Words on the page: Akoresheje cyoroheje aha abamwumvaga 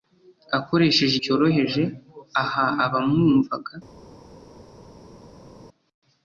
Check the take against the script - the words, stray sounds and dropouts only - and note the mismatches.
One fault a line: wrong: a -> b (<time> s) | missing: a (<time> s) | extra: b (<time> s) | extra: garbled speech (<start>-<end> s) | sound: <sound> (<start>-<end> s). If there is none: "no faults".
no faults